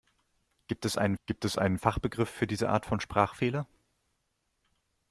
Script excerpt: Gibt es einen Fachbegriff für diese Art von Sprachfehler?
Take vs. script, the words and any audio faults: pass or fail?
fail